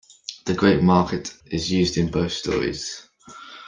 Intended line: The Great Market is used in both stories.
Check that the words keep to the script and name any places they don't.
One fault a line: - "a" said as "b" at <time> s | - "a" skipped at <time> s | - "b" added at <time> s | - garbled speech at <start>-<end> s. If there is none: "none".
none